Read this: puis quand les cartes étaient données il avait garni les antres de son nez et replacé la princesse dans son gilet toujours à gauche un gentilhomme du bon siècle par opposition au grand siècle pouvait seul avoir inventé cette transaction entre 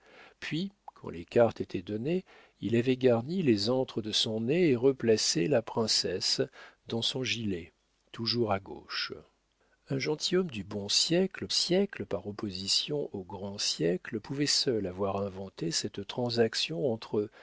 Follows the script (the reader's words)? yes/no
no